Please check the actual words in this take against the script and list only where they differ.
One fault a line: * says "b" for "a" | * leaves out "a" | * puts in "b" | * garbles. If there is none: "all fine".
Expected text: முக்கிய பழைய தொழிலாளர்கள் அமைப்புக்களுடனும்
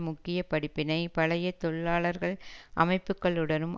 * puts in "படிப்பினை"